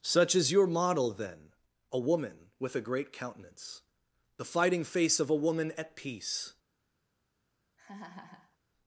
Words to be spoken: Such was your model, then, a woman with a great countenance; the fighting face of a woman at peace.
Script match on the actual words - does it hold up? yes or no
no